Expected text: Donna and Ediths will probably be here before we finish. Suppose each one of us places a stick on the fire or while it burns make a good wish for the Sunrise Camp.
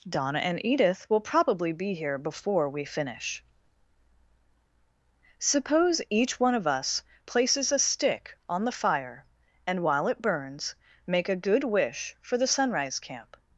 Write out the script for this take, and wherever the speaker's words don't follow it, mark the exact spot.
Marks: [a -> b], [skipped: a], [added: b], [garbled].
Donna and [Ediths -> Edith] will probably be here before we finish. Suppose each one of us places a stick on the fire [or -> and] while it burns make a good wish for the Sunrise Camp.